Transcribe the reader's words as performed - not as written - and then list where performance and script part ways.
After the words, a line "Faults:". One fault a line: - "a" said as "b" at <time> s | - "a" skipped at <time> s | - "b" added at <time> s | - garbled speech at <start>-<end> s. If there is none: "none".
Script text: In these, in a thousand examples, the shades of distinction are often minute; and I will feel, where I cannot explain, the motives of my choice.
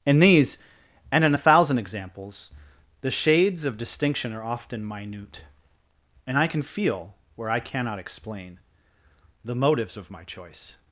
In these, and in a thousand examples, the shades of distinction are often minute; and I can feel, where I cannot explain, the motives of my choice.
Faults:
- "and" added at 1.1 s
- "will" said as "can" at 6.5 s